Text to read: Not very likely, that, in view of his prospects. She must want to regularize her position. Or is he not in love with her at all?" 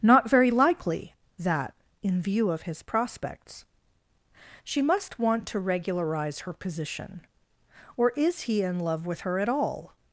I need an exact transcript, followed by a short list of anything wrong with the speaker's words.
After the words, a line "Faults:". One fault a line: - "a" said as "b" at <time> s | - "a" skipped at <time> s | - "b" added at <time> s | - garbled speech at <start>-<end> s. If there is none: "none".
Not very likely, that, in view of his prospects. She must want to regularize her position. Or is he in love with her at all?"
Faults:
- "not" skipped at 8.6 s